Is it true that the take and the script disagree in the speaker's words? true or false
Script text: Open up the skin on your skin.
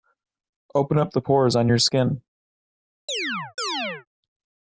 true